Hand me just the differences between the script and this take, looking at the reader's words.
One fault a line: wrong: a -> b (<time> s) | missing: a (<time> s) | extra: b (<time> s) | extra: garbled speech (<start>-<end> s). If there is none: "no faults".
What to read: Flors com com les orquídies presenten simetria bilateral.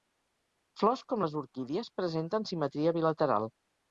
missing: com (1.2 s)